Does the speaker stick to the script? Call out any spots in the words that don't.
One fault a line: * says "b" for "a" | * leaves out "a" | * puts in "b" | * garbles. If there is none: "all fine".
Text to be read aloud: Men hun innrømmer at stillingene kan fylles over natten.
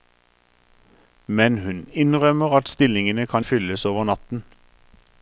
all fine